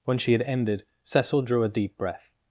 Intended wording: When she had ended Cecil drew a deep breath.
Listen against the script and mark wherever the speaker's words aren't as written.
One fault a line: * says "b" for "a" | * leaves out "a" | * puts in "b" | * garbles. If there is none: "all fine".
all fine